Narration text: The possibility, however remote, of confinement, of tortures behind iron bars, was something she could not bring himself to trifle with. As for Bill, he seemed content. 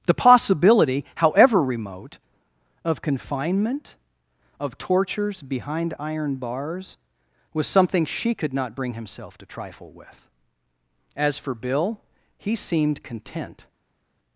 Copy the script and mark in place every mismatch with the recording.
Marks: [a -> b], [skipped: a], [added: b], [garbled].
The possibility, however remote, of confinement, of tortures behind iron bars, was something she could not bring himself to trifle with. As for Bill, he seemed content.